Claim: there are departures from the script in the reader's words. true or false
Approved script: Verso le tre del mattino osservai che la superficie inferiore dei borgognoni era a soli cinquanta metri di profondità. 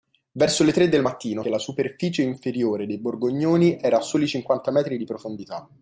true